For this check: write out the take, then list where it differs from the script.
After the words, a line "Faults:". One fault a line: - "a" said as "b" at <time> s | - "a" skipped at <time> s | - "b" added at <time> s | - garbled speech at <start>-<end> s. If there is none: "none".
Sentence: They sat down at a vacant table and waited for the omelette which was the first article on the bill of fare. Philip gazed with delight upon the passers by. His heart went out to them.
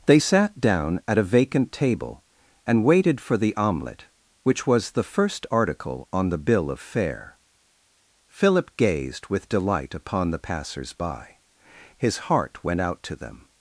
They sat down at a vacant table and waited for the omelette which was the first article on the bill of fare. Philip gazed with delight upon the passers by. His heart went out to them.
Faults:
none